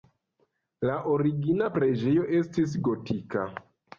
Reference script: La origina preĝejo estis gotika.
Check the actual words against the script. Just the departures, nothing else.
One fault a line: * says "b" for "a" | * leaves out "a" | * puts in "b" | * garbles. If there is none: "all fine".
all fine